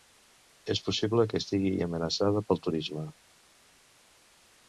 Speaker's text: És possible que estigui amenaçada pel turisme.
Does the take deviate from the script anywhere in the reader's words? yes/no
no